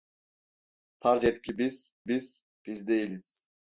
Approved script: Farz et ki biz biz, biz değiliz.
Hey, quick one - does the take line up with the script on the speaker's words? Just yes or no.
yes